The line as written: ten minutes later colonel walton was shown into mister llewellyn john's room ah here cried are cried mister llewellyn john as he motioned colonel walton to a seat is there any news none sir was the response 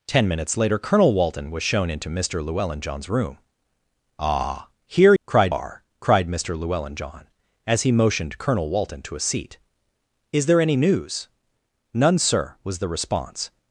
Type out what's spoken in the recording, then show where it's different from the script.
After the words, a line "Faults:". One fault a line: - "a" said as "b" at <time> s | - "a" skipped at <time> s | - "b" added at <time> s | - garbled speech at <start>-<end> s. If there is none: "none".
ten minutes later colonel walton was shown into mister llewellyn john's room ah here cried are cried mister llewellyn john as he motioned colonel walton to a seat is there any news none sir was the response
Faults:
none